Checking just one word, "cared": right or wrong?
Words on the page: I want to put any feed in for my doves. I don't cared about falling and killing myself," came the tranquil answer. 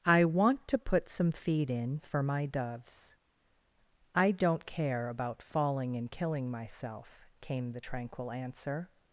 wrong